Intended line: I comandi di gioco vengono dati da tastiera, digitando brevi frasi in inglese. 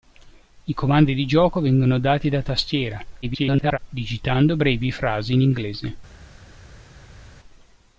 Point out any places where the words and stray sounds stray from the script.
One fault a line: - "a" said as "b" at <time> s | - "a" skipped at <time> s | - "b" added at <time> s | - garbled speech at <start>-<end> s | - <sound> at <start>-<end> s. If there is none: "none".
- garbled speech at 3.2-3.8 s